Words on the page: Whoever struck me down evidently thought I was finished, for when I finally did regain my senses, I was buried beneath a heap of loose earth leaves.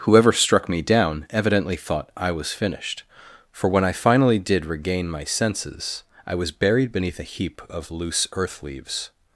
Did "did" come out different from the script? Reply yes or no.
no